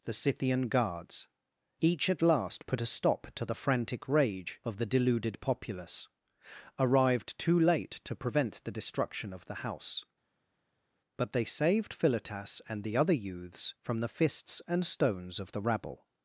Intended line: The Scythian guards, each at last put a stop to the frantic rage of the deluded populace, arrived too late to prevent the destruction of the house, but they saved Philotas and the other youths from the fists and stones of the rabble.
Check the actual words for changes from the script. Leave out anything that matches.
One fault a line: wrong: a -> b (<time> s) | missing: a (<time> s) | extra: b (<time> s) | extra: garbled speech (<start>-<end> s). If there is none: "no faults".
no faults